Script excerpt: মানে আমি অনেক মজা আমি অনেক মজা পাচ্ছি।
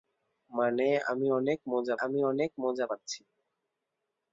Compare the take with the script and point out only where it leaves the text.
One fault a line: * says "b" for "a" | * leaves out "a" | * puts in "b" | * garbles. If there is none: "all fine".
all fine